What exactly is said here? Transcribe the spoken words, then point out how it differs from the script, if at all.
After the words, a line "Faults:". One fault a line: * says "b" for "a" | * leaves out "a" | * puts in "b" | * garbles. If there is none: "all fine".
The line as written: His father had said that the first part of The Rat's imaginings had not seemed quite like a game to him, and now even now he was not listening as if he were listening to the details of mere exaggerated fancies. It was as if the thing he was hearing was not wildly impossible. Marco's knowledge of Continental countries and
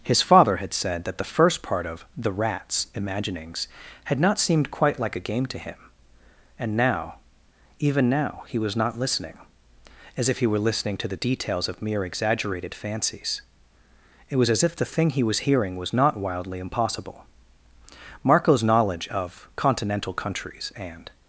His father had said that the first part of The Rat's imaginings had not seemed quite like a game to him, and now even now he was not listening as if he were listening to the details of mere exaggerated fancies. It was as if the thing he was hearing was not wildly impossible. Marco's knowledge of Continental countries and
Faults:
all fine